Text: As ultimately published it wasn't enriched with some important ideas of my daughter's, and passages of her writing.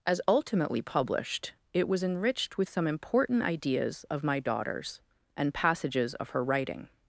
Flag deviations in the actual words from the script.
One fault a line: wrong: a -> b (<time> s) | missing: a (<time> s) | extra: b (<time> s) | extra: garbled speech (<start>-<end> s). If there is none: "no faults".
wrong: wasn't -> was (1.9 s)